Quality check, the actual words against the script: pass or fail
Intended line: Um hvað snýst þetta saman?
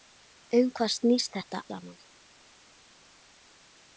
pass